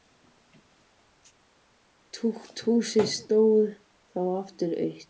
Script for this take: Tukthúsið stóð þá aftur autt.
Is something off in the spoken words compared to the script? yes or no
no